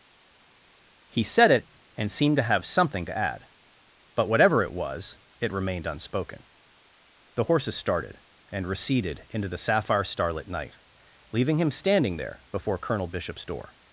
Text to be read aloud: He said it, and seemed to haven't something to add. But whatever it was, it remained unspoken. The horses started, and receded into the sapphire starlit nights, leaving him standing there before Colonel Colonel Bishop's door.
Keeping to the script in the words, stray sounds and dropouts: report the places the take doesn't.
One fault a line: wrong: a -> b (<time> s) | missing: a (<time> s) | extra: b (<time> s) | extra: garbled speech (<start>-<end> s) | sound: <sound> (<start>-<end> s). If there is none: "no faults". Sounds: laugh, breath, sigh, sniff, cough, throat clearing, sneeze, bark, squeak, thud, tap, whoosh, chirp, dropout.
wrong: haven't -> have (2.4 s)
wrong: nights -> night (10.5 s)
missing: Colonel (13.1 s)